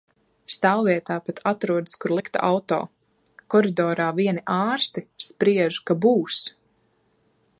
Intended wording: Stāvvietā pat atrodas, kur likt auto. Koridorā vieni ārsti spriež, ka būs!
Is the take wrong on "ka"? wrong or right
right